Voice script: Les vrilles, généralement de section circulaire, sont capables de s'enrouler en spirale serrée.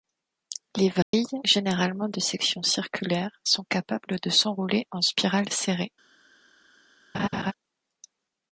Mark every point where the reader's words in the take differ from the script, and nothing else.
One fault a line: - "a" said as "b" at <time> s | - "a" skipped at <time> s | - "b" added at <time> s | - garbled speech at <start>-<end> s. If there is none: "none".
none